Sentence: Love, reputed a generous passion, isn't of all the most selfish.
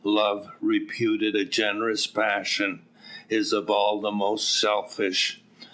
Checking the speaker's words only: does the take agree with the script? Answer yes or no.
no